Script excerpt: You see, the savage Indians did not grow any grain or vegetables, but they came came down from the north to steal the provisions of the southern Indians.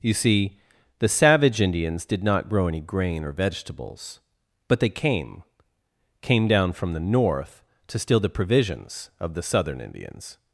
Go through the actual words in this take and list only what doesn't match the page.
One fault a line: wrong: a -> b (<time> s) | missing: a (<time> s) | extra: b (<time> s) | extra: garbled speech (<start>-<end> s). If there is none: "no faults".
no faults